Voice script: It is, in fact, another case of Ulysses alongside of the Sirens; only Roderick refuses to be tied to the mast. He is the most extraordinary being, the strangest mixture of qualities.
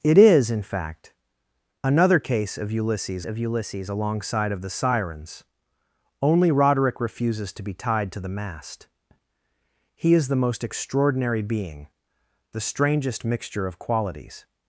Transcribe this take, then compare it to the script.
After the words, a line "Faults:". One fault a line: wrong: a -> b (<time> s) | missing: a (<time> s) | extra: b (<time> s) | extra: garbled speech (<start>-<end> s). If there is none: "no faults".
It is, in fact, another case of Ulysses of Ulysses alongside of the Sirens; only Roderick refuses to be tied to the mast. He is the most extraordinary being, the strangest mixture of qualities.
Faults:
extra: of Ulysses (3.2 s)